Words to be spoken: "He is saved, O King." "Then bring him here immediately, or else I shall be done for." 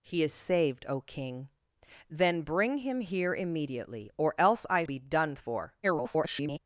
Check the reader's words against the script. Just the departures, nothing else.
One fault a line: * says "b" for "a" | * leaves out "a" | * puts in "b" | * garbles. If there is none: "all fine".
* leaves out "shall"
* garbles